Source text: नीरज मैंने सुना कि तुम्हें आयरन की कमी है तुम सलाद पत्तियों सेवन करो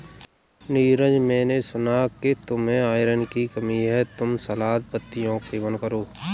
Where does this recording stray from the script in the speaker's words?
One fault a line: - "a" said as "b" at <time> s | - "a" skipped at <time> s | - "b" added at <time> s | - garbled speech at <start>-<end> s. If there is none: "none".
none